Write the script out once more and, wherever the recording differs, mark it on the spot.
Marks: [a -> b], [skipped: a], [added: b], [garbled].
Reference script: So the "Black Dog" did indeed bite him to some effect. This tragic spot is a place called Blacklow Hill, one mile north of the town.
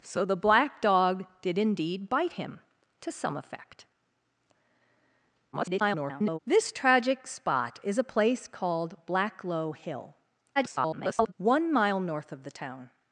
So the "Black Dog" did indeed bite him to some effect. [garbled] This tragic spot is a place called Blacklow Hill, [garbled] one mile north of the town.